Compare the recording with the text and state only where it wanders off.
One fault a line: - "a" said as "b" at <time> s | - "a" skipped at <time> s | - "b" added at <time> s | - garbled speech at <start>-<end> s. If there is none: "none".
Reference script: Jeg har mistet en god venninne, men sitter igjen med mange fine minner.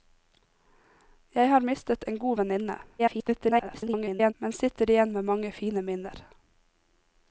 - garbled speech at 3.0-4.3 s